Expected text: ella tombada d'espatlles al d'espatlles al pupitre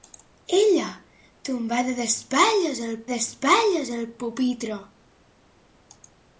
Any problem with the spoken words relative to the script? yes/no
no